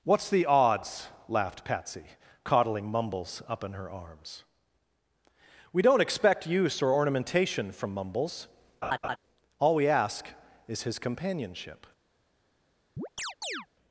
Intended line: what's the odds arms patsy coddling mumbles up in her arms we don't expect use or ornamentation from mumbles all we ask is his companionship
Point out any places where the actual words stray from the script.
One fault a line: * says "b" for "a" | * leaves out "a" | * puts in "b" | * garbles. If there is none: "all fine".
* says "laughed" for "arms"